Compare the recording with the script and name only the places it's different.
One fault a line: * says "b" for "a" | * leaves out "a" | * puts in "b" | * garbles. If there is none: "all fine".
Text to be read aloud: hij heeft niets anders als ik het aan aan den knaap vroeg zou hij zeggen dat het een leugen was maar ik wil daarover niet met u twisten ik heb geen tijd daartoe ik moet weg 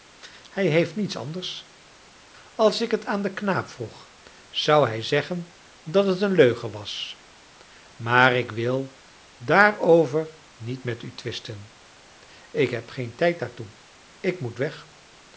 * leaves out "aan"